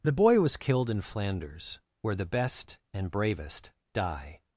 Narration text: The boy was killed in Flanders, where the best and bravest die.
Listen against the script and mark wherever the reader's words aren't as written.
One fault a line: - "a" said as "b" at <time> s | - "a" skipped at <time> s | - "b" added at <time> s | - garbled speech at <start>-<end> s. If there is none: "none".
none